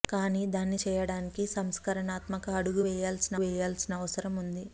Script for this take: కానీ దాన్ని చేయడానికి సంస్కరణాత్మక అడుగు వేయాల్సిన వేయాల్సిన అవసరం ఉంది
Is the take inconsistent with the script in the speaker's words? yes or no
no